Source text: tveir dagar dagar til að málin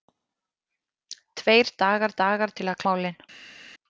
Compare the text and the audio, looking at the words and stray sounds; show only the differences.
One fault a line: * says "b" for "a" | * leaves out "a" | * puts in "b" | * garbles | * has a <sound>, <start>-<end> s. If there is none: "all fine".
all fine